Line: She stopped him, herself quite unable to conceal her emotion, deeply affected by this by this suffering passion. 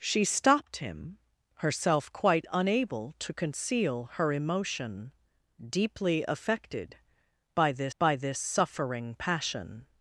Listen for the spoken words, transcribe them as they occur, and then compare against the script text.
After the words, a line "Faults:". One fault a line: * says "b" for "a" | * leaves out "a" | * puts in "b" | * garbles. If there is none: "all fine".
She stopped him, herself quite unable to conceal her emotion, deeply affected by this by this suffering passion.
Faults:
all fine